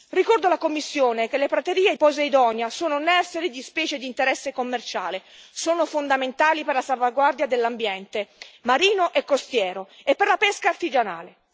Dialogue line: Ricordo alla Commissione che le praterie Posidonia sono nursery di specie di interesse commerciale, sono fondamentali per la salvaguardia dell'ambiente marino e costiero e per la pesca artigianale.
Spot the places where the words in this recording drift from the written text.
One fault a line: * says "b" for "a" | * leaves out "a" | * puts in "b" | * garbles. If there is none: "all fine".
all fine